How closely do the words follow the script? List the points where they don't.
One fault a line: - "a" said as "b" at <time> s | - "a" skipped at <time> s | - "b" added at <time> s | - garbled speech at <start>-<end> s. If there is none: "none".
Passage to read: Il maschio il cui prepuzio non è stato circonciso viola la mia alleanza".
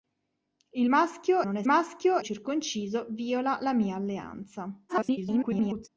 - "il cui prepuzio" skipped at 1.4 s
- "stato" said as "maschio" at 1.7 s
- garbled speech at 4.9-5.9 s